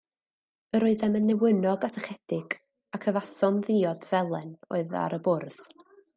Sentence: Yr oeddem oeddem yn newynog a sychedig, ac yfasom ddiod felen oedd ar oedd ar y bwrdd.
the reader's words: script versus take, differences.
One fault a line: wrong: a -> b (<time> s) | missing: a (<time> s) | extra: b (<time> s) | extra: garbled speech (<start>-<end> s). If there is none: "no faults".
missing: oeddem (1.2 s)
missing: oedd ar (5.2 s)